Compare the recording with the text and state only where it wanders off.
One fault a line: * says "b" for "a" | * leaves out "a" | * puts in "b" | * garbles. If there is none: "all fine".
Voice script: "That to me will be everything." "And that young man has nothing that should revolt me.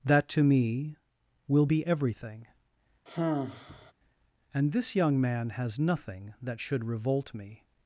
* says "this" for "that"